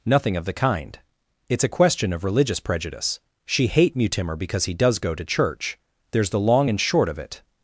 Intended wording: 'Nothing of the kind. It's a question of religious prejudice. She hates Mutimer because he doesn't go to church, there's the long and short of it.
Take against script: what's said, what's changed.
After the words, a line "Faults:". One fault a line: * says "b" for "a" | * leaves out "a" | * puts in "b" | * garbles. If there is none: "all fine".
'Nothing of the kind. It's a question of religious prejudice. She hate Mutimer because he does go to church, there's the long and short of it.
Faults:
* says "hate" for "hates"
* says "does" for "doesn't"